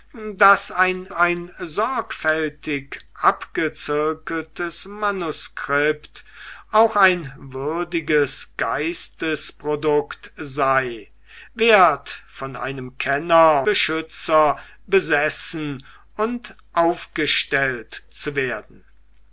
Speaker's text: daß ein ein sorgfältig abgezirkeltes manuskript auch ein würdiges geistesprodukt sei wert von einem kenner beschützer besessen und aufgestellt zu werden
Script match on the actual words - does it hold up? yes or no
yes